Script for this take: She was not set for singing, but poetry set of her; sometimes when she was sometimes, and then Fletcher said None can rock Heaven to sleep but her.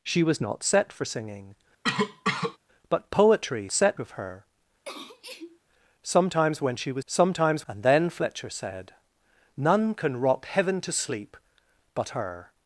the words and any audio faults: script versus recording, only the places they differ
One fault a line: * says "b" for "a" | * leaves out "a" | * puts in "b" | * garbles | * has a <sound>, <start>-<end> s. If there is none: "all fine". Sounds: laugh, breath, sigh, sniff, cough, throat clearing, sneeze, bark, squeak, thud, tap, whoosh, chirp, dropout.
* has a cough, 1.8-2.6 s
* has a sneeze, 4.8-5.6 s